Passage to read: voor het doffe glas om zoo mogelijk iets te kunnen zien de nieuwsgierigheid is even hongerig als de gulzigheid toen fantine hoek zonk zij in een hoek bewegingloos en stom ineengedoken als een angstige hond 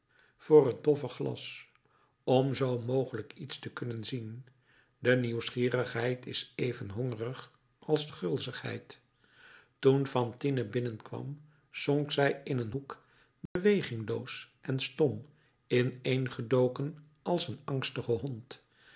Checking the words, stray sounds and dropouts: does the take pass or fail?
fail